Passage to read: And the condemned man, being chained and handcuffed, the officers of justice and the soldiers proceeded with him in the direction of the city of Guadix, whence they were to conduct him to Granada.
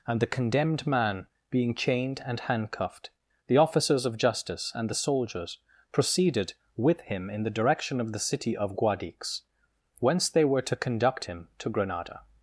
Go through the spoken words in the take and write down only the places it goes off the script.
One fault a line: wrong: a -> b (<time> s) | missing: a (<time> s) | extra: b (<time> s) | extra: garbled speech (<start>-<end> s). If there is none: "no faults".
no faults